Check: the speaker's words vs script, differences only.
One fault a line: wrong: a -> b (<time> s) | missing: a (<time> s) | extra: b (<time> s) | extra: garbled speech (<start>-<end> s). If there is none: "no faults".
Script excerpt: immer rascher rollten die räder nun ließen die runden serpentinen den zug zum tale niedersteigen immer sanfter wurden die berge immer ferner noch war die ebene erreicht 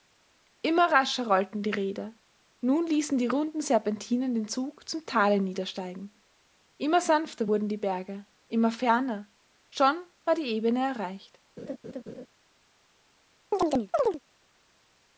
wrong: noch -> schon (9.7 s)